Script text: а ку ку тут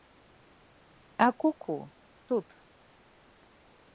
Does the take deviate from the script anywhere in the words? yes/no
no